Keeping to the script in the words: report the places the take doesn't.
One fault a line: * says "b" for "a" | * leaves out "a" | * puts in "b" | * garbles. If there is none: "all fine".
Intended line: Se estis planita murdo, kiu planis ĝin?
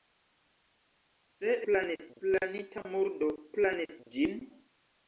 * says "planis" for "estis"
* leaves out "kiu"